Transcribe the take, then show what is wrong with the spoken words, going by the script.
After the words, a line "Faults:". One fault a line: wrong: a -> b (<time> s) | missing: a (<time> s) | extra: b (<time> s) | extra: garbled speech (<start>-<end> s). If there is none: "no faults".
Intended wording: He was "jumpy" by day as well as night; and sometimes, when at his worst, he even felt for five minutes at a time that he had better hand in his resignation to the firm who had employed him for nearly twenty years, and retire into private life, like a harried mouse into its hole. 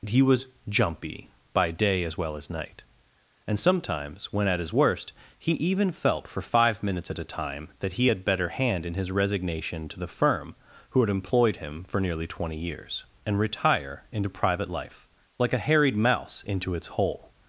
He was "jumpy" by day as well as night; and sometimes, when at his worst, he even felt for five minutes at a time that he had better hand in his resignation to the firm who had employed him for nearly twenty years, and retire into private life, like a harried mouse into its hole.
Faults:
no faults